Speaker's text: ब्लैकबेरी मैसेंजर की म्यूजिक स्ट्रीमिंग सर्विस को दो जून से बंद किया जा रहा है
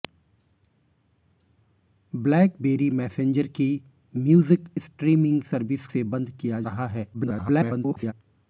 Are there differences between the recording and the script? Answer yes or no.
yes